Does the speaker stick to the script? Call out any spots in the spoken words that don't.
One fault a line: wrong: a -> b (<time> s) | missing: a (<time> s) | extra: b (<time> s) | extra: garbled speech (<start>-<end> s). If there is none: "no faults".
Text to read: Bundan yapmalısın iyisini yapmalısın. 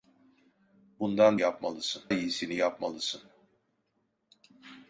no faults